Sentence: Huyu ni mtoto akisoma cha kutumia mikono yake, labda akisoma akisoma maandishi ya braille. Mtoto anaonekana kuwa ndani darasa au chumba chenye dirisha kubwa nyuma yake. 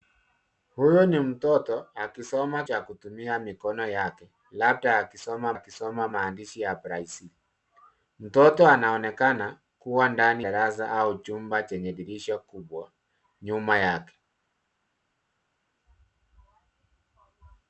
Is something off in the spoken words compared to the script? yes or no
no